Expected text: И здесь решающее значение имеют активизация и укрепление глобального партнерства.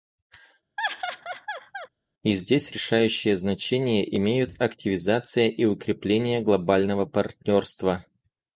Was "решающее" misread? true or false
false